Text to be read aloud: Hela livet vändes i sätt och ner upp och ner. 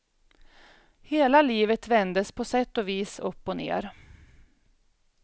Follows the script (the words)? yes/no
no